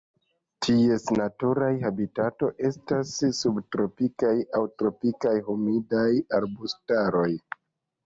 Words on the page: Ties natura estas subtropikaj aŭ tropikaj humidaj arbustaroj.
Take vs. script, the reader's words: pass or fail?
fail